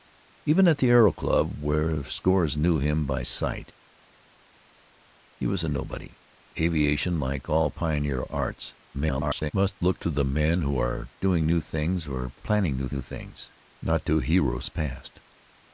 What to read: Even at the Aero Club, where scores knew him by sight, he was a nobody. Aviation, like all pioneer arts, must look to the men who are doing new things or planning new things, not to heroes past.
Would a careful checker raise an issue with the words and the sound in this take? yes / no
yes